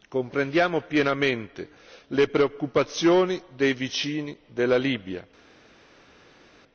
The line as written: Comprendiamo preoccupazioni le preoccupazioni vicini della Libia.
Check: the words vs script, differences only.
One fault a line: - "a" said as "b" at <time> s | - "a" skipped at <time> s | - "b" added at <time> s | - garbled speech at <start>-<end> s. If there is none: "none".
- "preoccupazioni" said as "pienamente" at 0.8 s
- "dei" added at 3.6 s